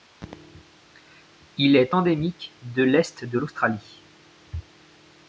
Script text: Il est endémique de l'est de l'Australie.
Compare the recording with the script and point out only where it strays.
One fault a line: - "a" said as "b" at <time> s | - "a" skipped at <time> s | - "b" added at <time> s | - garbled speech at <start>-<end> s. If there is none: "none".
none